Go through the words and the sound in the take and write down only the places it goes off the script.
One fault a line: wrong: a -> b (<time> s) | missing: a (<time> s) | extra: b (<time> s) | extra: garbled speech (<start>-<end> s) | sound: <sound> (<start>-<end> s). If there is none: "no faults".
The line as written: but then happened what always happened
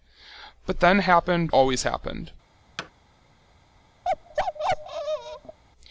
missing: what (1.5 s)
sound: thud (2.8-2.9 s)
sound: bark (4.0-5.6 s)